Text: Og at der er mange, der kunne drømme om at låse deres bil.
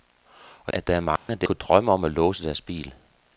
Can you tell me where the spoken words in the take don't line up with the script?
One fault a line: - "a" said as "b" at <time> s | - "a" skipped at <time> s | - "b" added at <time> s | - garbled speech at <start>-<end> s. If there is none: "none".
none